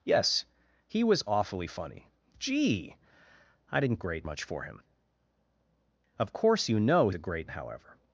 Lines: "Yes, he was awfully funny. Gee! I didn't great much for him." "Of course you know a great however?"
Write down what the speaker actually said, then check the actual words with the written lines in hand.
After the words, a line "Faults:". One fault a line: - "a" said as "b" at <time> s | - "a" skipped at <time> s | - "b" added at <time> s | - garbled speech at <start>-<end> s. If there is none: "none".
"Yes, he was awfully funny. Gee! I didn't great much for him." "Of course you know a great however?"
Faults:
none